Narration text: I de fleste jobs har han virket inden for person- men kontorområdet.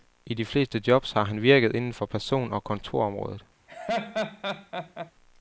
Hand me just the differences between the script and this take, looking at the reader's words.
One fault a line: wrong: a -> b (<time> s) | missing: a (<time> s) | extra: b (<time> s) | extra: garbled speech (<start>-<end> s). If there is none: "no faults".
wrong: men -> og (2.5 s)